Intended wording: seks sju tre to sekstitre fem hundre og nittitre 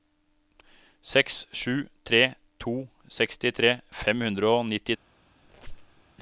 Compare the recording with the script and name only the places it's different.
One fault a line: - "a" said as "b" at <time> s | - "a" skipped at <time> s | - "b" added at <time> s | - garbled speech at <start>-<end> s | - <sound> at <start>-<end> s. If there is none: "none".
- squeak at 5.4-6.0 s